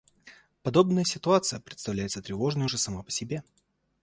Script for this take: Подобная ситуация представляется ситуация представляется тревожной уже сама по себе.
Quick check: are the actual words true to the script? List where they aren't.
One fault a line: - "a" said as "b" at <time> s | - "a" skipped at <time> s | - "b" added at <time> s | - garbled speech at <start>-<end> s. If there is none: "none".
- "ситуация представляется" skipped at 2.2 s